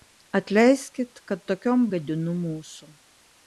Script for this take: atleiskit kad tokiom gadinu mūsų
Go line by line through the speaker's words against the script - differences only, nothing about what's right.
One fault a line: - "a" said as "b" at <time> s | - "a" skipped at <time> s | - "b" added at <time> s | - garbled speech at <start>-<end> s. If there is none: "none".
none